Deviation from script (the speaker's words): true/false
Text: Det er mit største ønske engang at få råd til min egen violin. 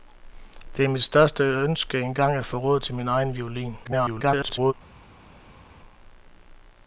true